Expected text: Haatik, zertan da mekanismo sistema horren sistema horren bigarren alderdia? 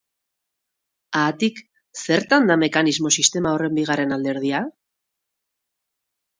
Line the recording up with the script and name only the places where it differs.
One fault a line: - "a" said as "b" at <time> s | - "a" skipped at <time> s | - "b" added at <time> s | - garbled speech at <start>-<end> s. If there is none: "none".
- "sistema horren" skipped at 3.8 s